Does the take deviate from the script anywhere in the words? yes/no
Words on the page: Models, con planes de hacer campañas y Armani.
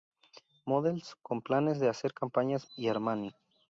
no